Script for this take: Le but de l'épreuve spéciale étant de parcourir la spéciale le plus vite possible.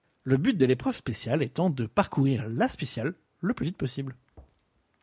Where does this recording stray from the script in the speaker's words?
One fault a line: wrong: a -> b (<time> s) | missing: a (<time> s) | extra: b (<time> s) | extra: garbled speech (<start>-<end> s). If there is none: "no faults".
no faults